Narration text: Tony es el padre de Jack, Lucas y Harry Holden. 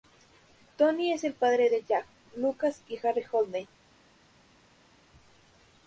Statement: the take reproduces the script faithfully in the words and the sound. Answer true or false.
true